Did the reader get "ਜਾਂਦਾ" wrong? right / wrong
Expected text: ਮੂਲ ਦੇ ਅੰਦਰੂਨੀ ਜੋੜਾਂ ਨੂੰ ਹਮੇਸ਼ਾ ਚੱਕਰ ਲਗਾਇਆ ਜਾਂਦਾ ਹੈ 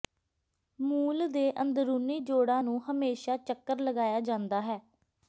right